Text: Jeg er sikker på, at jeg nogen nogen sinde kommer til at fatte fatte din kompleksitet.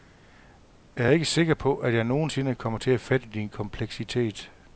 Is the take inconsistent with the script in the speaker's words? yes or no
yes